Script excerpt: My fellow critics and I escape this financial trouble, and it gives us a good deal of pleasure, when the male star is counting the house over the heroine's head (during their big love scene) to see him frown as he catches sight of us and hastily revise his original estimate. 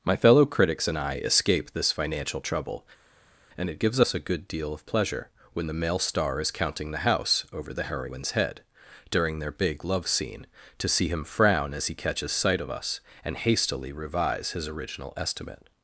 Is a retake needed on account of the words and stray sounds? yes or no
no